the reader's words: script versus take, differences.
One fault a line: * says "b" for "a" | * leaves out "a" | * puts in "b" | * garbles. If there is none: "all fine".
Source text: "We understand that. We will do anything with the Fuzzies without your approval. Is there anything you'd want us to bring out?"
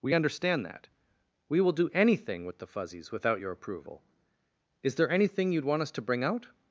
all fine